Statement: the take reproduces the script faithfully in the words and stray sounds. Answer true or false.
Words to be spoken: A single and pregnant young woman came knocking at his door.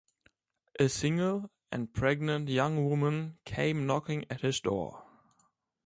true